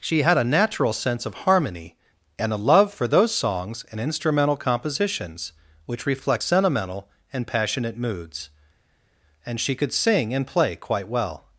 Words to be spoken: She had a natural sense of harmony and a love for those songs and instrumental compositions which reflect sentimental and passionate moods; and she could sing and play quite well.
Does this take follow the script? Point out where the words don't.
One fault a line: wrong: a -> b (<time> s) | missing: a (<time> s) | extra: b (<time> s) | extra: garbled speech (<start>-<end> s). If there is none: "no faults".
no faults